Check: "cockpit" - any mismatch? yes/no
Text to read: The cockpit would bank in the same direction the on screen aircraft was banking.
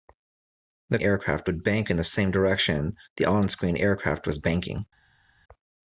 yes